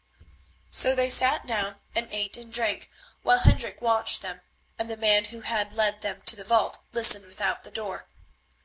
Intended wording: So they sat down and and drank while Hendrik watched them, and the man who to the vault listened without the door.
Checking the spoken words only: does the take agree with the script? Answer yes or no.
no